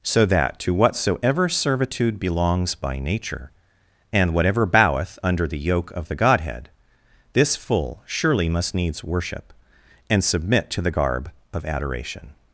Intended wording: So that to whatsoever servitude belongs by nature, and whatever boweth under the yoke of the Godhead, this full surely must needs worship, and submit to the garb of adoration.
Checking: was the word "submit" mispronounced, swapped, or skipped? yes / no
no